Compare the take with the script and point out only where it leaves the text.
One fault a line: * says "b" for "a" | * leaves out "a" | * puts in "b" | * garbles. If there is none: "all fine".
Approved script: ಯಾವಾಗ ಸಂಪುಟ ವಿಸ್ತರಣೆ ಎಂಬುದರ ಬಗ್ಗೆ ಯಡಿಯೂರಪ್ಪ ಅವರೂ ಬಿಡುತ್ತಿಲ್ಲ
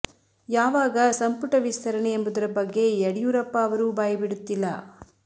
* puts in "ಬಾಯಿ"